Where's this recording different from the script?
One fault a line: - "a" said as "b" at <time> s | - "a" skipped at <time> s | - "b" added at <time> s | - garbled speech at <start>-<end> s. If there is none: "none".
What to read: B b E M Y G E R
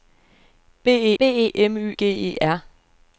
none